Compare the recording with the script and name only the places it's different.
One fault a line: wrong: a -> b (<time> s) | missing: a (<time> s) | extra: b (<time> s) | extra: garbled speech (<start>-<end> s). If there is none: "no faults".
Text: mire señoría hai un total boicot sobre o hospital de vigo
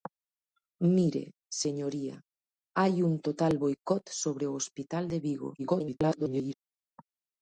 extra: garbled speech (5.6-6.5 s)